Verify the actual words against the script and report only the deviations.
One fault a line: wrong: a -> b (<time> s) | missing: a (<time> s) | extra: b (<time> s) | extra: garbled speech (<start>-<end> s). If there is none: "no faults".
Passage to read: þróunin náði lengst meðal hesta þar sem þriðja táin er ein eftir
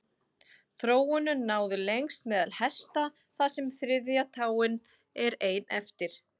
no faults